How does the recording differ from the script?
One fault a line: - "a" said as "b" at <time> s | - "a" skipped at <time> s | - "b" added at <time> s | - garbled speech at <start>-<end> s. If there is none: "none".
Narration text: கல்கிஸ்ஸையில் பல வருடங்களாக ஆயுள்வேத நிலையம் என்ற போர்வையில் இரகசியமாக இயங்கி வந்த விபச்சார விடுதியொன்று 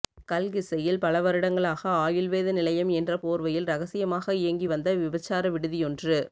none